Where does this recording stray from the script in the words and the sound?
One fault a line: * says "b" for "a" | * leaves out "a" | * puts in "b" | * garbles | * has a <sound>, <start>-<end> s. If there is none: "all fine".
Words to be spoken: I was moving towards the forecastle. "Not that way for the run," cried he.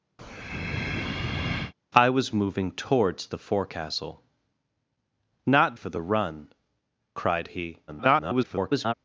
* has a breath, 0.2-1.7 s
* leaves out "that way"
* garbles